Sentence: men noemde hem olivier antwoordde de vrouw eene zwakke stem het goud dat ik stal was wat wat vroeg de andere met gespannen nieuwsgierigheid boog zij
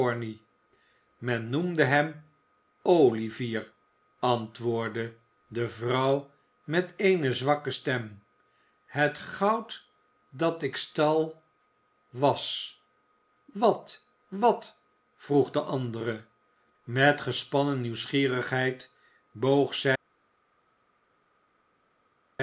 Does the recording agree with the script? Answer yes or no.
no